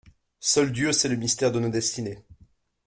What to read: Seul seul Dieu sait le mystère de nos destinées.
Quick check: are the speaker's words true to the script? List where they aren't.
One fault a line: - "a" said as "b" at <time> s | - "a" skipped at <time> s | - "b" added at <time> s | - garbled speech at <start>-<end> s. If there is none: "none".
- "seul" skipped at 0.7 s